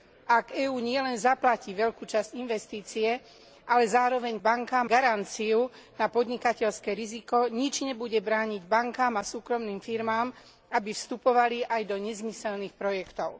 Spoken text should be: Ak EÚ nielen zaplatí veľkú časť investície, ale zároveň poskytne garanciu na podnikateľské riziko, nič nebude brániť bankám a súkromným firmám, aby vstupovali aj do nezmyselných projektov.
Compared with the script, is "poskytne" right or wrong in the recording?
wrong